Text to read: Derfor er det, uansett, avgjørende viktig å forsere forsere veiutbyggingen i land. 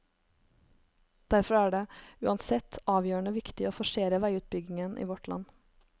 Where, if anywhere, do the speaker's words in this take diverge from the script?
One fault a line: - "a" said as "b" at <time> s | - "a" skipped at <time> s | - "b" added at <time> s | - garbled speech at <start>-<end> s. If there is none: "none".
- "forsere" skipped at 4.2 s
- "vårt" added at 5.1 s